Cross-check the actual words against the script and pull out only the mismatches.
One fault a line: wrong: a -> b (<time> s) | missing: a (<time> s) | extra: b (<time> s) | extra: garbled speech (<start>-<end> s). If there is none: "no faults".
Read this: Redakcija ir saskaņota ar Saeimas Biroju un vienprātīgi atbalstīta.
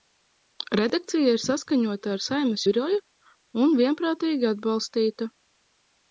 no faults